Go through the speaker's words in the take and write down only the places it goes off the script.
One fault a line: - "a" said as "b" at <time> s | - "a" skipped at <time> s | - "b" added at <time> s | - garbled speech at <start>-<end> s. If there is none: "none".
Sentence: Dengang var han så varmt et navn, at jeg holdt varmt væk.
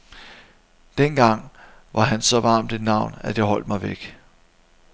- "varmt" said as "mig" at 3.7 s